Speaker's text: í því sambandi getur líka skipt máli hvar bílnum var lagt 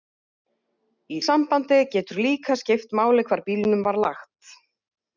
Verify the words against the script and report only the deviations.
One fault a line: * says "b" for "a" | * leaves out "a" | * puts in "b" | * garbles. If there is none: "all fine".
* leaves out "því"